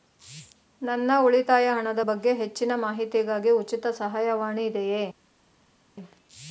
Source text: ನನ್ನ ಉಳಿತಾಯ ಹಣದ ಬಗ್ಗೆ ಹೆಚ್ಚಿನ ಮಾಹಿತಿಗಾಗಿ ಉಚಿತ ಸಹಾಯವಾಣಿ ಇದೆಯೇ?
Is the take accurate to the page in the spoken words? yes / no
yes